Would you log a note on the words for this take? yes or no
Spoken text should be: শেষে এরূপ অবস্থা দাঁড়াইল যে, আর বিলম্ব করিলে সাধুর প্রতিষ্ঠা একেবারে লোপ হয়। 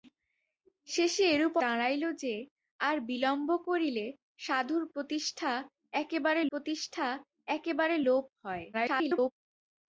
yes